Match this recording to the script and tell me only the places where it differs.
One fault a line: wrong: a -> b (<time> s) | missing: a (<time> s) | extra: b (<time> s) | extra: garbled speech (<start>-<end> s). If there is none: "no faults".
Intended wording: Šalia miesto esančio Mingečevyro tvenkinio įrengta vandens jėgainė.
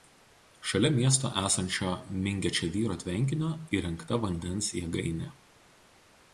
no faults